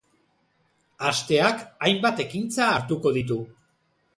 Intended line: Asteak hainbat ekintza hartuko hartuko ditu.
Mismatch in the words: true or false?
true